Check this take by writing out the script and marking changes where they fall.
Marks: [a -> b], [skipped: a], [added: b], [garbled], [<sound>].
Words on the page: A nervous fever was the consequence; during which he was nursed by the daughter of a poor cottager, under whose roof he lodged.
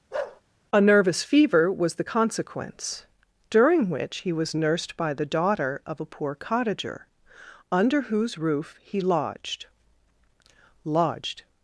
[bark] A nervous fever was the consequence; during which he was nursed by the daughter of a poor cottager, under whose roof he lodged. [added: lodged]